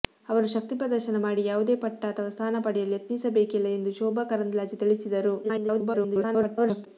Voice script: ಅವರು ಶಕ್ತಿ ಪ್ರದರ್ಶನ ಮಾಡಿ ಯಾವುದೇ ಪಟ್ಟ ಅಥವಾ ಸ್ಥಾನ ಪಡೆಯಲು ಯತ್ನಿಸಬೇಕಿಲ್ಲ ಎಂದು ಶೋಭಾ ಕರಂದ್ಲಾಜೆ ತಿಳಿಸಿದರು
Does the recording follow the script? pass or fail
fail